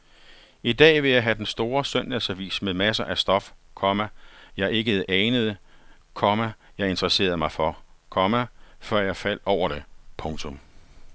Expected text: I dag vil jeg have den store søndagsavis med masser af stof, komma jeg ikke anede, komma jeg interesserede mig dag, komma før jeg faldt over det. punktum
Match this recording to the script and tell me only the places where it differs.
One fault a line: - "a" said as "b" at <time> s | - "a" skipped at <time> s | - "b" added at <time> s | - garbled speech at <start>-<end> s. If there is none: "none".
- "dag" said as "for" at 7.5 s